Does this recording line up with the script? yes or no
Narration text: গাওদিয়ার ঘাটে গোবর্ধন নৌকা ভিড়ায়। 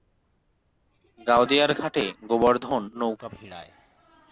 yes